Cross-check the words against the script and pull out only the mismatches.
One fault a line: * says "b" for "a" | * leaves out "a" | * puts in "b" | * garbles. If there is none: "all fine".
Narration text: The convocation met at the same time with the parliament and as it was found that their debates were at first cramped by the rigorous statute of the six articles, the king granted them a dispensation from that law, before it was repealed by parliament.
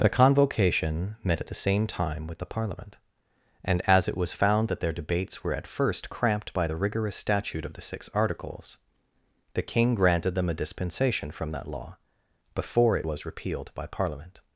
all fine